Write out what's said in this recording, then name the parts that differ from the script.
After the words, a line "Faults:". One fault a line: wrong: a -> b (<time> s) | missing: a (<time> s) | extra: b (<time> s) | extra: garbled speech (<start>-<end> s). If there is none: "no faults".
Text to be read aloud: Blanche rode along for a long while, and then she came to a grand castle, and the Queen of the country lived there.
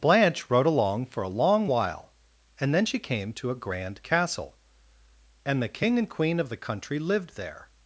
Blanche rode along for a long while, and then she came to a grand castle, and the King and Queen of the country lived there.
Faults:
extra: King and (5.7 s)